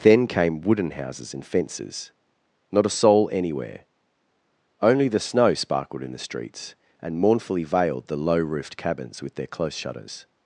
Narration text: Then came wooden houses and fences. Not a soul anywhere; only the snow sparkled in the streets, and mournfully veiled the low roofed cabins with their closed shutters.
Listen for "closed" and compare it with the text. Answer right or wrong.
wrong